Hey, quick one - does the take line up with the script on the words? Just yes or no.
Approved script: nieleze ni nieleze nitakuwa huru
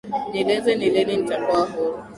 no